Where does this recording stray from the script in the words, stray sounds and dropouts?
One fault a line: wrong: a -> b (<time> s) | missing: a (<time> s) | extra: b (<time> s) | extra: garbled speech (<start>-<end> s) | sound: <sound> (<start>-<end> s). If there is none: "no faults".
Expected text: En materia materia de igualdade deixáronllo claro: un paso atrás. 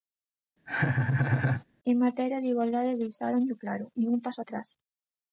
sound: laugh (0.7-1.6 s)
missing: materia (2.4 s)
extra: nin (4.0 s)